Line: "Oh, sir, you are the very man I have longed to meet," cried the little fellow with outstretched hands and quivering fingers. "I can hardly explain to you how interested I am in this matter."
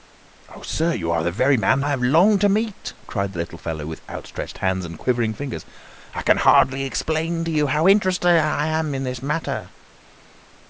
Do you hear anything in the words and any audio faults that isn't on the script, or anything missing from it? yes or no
no